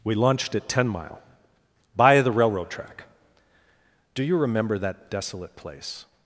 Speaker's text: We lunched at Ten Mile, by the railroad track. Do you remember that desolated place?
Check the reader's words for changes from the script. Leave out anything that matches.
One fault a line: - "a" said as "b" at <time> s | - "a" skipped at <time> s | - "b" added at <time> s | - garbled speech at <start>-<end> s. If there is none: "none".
- "desolated" said as "desolate" at 5.1 s